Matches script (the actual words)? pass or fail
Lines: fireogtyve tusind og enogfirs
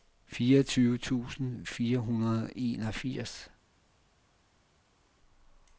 fail